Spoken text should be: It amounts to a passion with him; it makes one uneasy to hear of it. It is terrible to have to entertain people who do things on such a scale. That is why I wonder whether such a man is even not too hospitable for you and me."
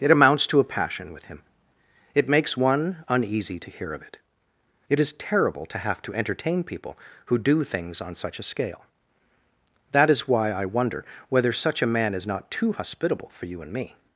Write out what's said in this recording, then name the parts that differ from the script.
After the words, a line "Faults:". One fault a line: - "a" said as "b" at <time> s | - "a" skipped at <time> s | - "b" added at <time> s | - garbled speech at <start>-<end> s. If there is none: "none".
It amounts to a passion with him; it makes one uneasy to hear of it. It is terrible to have to entertain people who do things on such a scale. That is why I wonder whether such a man is not too hospitable for you and me."
Faults:
- "even" skipped at 12.3 s